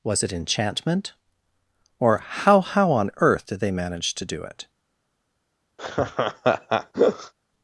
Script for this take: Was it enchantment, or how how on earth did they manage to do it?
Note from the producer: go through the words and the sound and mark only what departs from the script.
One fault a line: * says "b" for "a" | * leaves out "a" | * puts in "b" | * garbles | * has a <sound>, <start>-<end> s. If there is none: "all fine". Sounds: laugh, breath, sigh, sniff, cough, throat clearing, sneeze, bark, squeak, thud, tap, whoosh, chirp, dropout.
* has a laugh, 5.8-7.3 s